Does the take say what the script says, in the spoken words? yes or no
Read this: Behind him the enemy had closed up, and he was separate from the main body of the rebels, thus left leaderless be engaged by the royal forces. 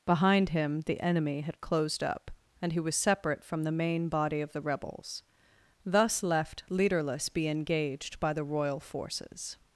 yes